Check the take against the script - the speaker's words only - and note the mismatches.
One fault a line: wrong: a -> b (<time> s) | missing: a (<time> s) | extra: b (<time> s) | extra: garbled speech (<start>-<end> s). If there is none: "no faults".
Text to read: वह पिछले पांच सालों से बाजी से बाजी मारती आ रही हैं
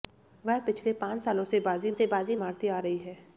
no faults